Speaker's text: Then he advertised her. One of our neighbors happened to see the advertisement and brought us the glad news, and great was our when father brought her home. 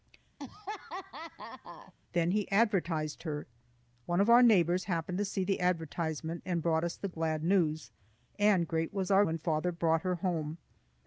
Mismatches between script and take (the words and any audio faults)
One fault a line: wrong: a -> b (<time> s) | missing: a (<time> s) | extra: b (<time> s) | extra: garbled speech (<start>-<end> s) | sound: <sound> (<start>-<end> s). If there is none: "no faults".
sound: laugh (0.4-1.9 s)